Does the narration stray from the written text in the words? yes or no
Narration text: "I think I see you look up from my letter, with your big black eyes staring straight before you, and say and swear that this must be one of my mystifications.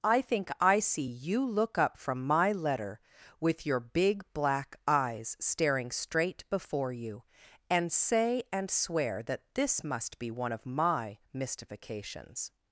no